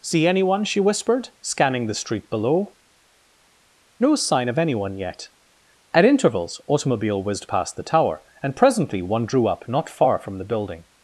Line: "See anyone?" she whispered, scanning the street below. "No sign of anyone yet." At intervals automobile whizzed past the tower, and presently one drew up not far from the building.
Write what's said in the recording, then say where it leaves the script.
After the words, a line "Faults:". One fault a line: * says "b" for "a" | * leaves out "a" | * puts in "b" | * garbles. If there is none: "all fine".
"See anyone?" she whispered, scanning the street below. "No sign of anyone yet." At intervals automobile whizzed past the tower, and presently one drew up not far from the building.
Faults:
all fine